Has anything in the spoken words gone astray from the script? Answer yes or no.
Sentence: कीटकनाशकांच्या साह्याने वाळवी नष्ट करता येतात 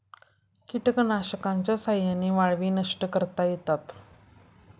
no